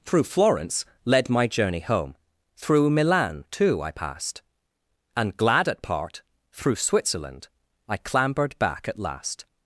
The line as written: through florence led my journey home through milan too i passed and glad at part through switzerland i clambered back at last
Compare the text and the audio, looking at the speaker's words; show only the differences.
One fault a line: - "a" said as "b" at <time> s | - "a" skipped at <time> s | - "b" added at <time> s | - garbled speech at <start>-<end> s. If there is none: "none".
none